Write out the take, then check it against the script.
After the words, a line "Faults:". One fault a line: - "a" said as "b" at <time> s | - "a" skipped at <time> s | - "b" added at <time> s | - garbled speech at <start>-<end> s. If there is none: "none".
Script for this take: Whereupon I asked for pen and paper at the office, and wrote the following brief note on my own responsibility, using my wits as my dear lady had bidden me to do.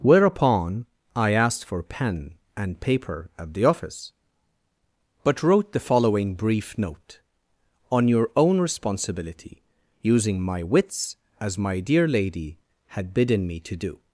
Whereupon I asked for pen and paper at the office, but wrote the following brief note on your own responsibility, using my wits as my dear lady had bidden me to do.
Faults:
- "and" said as "but" at 5.2 s
- "my" said as "your" at 8.1 s